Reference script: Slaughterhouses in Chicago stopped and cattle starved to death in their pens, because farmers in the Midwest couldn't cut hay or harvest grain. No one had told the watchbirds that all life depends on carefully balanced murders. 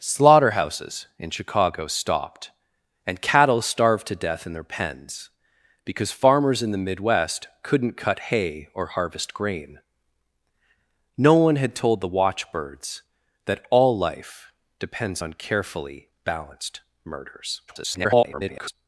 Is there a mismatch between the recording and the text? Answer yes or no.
yes